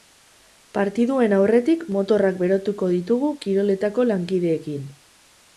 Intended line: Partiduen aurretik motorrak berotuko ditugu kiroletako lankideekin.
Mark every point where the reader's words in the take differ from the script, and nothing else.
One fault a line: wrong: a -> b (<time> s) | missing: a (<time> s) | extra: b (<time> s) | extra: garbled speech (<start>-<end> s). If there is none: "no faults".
no faults